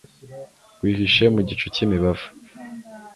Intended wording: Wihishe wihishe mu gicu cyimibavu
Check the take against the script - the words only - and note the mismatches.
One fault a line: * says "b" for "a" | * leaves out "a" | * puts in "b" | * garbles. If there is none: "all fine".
* leaves out "wihishe"